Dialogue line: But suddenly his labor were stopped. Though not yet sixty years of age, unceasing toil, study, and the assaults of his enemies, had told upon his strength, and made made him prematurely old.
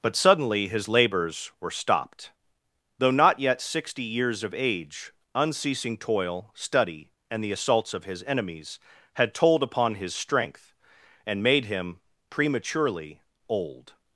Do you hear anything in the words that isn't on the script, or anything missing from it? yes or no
yes